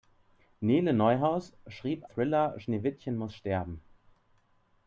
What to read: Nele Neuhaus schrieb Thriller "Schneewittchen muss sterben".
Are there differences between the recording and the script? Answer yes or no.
no